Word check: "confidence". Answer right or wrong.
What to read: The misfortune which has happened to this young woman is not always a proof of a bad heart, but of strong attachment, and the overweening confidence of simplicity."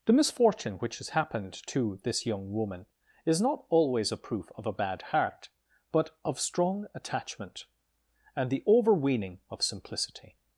wrong